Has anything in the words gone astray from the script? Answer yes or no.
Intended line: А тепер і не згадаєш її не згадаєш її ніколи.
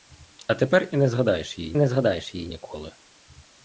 no